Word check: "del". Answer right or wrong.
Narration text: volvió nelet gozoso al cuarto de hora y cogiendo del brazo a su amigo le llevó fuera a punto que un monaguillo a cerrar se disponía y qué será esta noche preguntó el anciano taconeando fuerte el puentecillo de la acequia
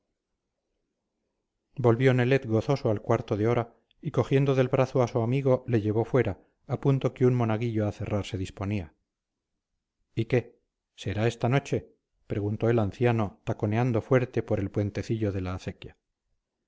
right